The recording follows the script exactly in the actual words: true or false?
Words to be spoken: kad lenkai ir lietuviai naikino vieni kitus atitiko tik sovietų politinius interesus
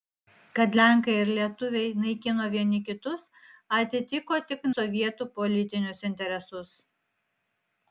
true